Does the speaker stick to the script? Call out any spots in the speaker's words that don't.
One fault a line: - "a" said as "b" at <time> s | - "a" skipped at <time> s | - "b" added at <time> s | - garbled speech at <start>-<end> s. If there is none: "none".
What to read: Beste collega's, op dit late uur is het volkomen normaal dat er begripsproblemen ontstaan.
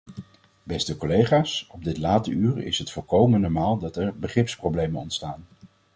none